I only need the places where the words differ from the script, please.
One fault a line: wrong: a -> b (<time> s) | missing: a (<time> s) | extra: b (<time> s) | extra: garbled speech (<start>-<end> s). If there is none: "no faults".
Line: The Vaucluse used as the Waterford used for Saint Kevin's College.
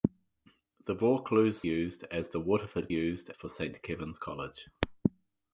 no faults